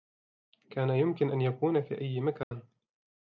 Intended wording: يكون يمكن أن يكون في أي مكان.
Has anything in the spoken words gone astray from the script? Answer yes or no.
yes